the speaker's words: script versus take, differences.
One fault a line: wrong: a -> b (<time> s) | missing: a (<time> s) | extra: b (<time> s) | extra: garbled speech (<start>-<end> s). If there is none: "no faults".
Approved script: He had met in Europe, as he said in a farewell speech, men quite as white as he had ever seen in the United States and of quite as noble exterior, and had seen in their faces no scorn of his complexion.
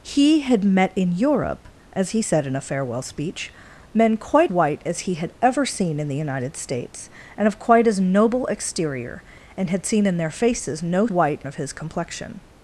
missing: as (4.5 s)
wrong: scorn -> white (11.1 s)